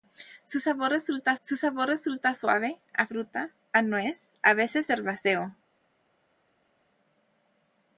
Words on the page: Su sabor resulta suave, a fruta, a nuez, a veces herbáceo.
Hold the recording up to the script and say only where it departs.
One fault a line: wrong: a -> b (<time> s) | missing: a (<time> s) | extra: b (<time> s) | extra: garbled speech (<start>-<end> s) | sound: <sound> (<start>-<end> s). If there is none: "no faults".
extra: su sabor resulta (1.4 s)